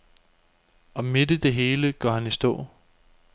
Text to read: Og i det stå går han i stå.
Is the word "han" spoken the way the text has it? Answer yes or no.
yes